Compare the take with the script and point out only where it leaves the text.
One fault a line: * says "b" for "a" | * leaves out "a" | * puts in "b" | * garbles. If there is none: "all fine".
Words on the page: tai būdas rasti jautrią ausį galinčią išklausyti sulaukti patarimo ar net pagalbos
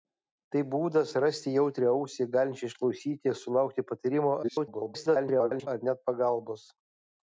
* garbles